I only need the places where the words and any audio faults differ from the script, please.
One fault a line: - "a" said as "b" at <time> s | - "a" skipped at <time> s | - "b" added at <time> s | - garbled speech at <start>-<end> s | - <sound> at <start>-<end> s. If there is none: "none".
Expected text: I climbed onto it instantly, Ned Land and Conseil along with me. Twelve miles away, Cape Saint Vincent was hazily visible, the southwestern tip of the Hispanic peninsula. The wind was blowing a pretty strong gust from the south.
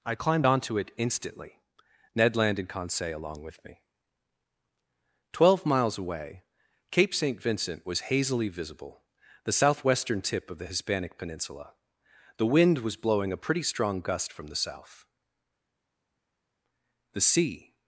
- "The sea" added at 17.1 s